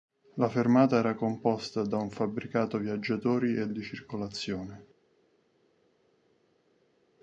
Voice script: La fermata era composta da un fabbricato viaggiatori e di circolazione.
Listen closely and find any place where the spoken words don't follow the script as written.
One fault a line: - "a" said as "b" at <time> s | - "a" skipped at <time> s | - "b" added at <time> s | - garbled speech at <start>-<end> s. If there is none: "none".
none